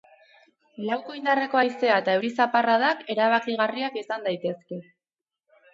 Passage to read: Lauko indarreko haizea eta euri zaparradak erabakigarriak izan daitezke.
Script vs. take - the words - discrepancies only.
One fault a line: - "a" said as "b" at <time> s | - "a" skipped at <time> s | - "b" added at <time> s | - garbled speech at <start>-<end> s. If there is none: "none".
none